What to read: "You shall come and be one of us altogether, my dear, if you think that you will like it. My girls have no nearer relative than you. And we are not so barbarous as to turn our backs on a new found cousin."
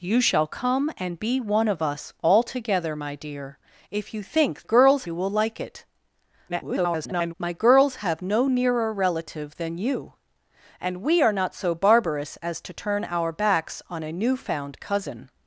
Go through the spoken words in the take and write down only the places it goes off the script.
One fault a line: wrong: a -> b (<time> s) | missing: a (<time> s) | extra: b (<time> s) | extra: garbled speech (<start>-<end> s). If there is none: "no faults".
wrong: that -> girls (4.6 s)
extra: garbled speech (6.5-7.3 s)